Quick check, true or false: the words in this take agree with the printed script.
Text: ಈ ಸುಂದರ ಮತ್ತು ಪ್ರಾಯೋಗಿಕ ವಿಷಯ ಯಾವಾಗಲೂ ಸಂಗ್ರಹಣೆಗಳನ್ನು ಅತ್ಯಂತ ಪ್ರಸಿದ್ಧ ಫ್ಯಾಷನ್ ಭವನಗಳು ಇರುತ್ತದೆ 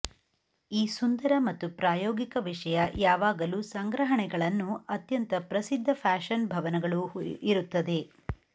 true